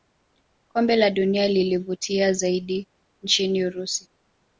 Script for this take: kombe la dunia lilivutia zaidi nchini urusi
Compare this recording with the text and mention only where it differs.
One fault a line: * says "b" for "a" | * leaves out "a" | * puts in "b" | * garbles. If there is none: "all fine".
all fine